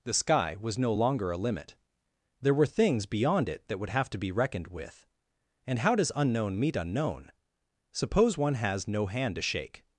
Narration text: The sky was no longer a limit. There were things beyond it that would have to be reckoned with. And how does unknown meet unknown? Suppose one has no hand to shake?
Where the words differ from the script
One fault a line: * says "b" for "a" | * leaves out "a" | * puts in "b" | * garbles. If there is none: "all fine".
all fine